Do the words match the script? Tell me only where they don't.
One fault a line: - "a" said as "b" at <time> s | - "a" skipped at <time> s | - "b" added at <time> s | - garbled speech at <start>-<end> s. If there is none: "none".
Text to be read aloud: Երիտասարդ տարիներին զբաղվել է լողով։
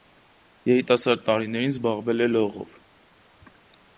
none